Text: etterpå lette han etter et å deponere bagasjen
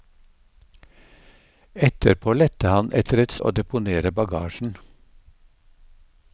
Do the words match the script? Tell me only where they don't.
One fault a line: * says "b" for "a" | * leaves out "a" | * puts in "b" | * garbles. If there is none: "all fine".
all fine